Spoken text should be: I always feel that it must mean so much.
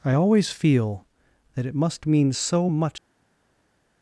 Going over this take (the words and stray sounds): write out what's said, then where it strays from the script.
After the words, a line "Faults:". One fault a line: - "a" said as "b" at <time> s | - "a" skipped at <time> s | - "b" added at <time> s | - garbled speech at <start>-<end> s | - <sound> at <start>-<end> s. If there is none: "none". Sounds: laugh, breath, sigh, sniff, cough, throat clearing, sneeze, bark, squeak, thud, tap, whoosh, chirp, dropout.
I always feel that it must mean so much.
Faults:
none